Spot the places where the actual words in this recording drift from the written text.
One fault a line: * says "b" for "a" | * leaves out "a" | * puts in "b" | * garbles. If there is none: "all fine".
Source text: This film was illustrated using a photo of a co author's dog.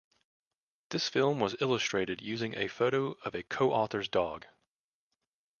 all fine